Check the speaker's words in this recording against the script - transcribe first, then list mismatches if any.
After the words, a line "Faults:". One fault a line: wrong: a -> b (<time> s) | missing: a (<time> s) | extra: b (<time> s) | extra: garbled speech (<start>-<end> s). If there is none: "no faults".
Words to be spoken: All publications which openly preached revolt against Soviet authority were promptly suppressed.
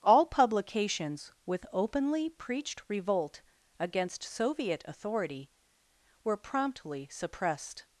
All publications with openly preached revolt against Soviet authority were promptly suppressed.
Faults:
wrong: which -> with (1.4 s)